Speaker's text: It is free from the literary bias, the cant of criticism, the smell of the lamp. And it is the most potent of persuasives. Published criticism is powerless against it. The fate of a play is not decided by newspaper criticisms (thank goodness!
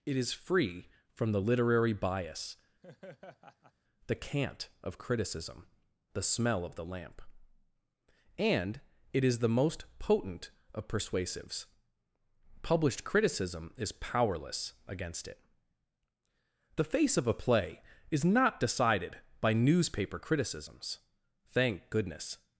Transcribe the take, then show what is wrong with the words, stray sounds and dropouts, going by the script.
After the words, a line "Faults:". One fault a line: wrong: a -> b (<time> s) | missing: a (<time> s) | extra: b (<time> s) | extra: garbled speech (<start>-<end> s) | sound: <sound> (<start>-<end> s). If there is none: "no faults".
It is free from the literary bias, the cant of criticism, the smell of the lamp. And it is the most potent of persuasives. Published criticism is powerless against it. The face of a play is not decided by newspaper criticisms (thank goodness!
Faults:
sound: laugh (2.8-3.7 s)
wrong: fate -> face (16.8 s)